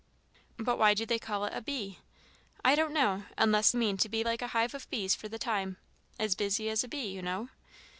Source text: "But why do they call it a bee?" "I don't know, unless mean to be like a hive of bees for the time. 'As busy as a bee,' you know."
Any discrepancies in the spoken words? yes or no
no